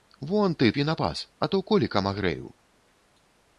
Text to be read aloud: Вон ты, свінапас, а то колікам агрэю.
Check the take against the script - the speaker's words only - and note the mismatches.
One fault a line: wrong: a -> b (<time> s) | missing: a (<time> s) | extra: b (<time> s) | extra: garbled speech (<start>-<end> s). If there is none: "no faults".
no faults